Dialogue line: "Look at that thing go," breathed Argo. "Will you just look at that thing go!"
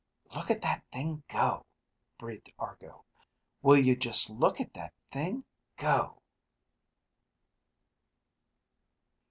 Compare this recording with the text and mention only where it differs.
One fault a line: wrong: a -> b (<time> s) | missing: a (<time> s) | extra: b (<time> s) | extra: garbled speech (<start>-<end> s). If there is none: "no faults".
no faults